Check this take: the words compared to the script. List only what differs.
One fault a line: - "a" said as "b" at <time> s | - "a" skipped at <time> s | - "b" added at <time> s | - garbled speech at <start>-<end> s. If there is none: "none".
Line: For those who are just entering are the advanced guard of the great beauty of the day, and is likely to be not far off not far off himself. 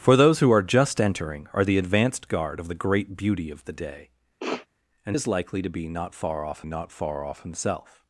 none